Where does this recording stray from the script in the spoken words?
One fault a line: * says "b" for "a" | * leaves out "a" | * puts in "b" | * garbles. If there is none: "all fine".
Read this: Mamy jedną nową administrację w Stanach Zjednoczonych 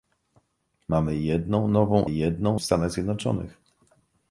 * says "jedną" for "administrację"